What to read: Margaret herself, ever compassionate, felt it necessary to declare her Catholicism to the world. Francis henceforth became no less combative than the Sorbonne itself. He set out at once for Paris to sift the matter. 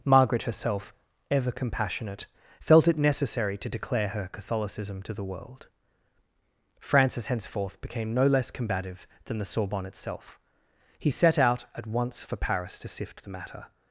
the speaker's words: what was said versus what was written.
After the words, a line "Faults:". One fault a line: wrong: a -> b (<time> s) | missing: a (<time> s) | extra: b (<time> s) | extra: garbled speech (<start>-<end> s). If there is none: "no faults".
Margaret herself, ever compassionate, felt it necessary to declare her Catholicism to the world. Francis henceforth became no less combative than the Sorbonne itself. He set out at once for Paris to sift the matter.
Faults:
no faults